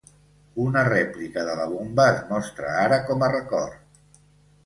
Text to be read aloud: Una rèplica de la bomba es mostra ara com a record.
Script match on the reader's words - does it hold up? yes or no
yes